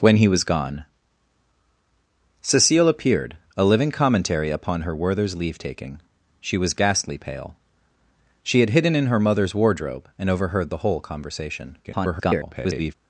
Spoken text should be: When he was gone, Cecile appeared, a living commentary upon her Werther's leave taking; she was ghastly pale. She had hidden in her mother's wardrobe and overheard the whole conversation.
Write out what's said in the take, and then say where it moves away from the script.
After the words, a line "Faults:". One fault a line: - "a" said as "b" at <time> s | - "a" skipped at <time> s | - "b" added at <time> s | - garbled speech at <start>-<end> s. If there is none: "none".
When he was gone, Cecile appeared, a living commentary upon her Werther's leave taking; she was ghastly pale. She had hidden in her mother's wardrobe and overheard the whole conversation. [garbled]
Faults:
- garbled speech at 11.8-12.9 s